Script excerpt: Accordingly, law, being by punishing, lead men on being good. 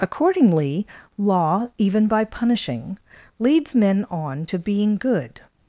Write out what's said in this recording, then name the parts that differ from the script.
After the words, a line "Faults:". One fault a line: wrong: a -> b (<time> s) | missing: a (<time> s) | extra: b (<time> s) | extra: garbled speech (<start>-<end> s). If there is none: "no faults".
Accordingly, law, even by punishing, leads men on to being good.
Faults:
wrong: being -> even (1.8 s)
wrong: lead -> leads (3.4 s)
extra: to (4.5 s)